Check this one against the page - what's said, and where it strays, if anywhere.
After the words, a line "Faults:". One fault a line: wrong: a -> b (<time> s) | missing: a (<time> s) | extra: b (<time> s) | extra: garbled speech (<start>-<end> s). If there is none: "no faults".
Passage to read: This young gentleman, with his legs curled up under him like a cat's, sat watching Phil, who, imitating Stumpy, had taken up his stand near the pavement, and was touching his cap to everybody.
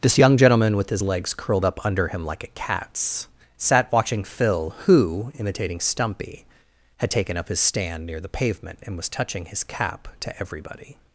This young gentleman, with his legs curled up under him like a cat's, sat watching Phil, who, imitating Stumpy, had taken up his stand near the pavement, and was touching his cap to everybody.
Faults:
no faults